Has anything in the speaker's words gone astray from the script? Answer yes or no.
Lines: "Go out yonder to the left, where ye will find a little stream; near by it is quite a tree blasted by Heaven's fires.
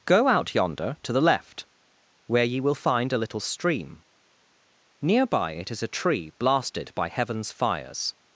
yes